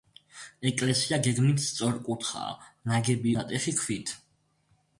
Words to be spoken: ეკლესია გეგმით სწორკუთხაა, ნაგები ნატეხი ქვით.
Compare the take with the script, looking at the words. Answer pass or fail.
pass